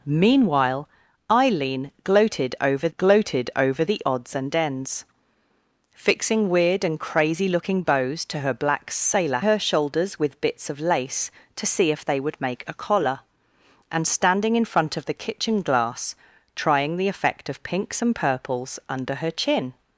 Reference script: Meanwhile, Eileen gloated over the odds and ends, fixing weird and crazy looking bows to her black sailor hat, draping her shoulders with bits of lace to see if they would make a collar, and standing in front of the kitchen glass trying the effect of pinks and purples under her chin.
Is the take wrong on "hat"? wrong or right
wrong